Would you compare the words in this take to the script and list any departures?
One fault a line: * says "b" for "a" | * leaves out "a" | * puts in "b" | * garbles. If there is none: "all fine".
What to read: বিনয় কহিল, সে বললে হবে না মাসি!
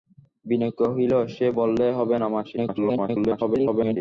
* garbles